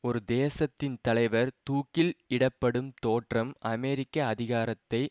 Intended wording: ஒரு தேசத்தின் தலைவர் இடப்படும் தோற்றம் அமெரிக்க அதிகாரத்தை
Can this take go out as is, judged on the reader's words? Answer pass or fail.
fail